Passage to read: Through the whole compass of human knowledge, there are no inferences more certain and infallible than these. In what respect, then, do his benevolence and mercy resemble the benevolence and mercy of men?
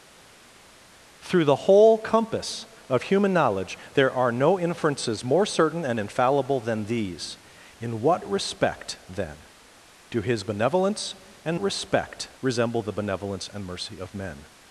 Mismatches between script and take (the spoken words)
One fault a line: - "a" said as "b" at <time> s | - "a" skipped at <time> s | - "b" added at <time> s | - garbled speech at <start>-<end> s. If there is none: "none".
- "mercy" said as "respect" at 11.6 s